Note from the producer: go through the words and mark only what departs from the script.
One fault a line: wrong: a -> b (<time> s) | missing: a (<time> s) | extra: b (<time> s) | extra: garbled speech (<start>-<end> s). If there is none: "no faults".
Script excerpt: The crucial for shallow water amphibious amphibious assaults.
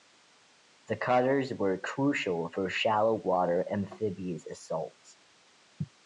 extra: cutters were (1.0 s)
missing: amphibious (4.5 s)